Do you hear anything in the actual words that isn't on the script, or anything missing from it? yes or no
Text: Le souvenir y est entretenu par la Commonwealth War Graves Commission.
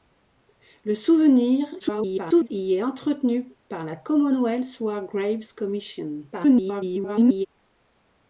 yes